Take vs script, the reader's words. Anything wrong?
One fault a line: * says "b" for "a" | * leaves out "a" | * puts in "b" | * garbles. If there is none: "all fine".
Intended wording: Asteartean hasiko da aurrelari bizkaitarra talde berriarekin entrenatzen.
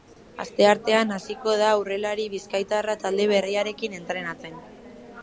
all fine